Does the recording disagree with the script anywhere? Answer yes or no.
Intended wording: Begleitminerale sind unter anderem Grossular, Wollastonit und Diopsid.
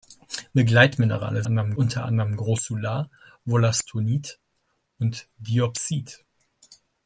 yes